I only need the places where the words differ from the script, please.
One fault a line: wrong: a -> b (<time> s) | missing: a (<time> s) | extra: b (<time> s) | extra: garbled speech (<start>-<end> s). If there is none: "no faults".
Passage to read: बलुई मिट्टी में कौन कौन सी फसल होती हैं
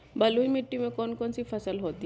no faults